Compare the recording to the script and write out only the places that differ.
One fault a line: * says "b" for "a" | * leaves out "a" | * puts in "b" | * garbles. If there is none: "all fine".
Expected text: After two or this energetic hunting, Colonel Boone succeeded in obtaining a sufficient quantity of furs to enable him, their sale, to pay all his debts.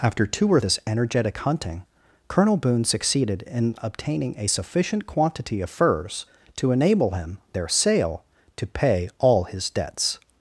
all fine